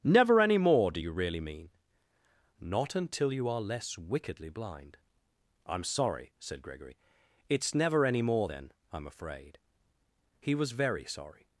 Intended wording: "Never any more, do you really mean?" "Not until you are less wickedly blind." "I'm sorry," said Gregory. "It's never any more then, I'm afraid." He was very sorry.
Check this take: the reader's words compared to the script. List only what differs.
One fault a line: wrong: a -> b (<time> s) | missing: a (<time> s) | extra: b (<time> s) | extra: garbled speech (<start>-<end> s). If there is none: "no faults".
no faults